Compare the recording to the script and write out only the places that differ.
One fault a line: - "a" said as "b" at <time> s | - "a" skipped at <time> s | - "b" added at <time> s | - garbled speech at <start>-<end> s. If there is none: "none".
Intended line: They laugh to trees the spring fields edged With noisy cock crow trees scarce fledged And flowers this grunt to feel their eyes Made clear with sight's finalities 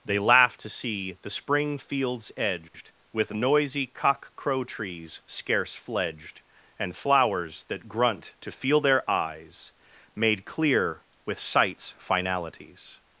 - "trees" said as "see" at 0.7 s
- "this" said as "that" at 7.7 s